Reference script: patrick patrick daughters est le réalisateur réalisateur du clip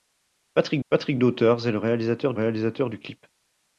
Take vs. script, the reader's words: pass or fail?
pass